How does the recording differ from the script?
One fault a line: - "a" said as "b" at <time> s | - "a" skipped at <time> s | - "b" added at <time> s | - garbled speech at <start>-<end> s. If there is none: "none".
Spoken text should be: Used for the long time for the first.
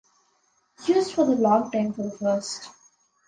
none